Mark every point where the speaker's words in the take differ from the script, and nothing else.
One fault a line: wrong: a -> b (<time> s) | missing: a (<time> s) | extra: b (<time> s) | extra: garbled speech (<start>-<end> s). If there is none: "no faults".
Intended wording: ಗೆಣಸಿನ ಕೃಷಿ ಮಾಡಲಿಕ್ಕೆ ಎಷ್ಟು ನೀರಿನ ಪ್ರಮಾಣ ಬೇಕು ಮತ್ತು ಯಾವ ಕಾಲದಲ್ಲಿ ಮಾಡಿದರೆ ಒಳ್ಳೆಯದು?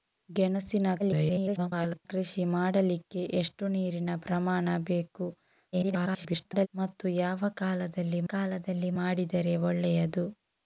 extra: garbled speech (1.0-2.1 s)
extra: garbled speech (5.7-6.7 s)
extra: ಕಾಲದಲ್ಲಿ (8.3 s)